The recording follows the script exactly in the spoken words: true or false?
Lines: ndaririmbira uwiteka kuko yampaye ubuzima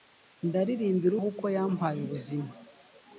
false